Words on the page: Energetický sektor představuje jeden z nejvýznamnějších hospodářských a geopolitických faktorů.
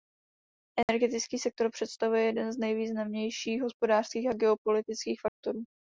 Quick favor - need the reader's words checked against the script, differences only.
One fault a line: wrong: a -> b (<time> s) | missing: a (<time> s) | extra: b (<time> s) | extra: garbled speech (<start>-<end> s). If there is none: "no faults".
no faults